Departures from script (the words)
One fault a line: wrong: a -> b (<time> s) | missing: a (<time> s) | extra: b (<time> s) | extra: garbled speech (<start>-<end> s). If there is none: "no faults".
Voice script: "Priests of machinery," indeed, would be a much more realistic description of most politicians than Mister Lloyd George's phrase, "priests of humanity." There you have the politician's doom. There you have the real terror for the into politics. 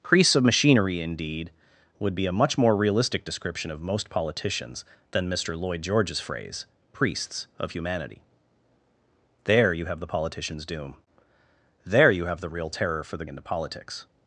no faults